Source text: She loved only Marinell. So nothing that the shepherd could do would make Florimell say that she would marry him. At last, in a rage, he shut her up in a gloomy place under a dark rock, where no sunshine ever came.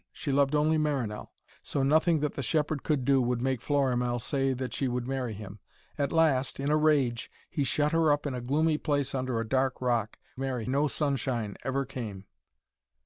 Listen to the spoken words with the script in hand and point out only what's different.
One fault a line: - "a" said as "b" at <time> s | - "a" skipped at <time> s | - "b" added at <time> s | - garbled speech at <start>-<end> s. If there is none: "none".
- "where" said as "marry" at 10.4 s